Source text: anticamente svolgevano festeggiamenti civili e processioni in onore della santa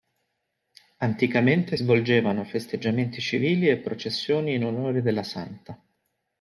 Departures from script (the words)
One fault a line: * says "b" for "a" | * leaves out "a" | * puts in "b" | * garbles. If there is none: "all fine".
all fine